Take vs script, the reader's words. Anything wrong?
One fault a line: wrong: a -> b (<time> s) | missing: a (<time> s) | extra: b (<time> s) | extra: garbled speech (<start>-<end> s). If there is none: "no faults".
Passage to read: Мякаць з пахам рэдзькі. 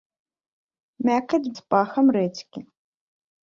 no faults